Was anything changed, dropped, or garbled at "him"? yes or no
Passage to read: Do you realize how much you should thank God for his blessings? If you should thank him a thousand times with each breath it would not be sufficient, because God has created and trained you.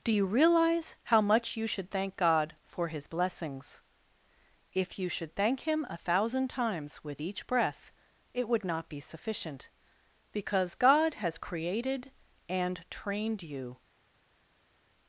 no